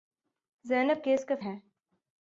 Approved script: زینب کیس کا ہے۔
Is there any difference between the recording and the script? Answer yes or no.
no